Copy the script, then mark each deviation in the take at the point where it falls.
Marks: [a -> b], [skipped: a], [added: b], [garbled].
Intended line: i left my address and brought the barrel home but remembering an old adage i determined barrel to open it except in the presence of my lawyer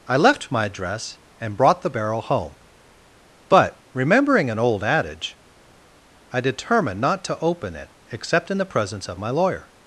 i left my address and brought the barrel home but remembering an old adage i determined [barrel -> not] to open it except in the presence of my lawyer